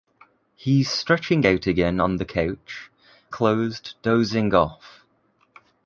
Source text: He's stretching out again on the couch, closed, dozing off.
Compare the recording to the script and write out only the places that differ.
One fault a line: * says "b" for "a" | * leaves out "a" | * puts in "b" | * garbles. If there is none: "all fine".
all fine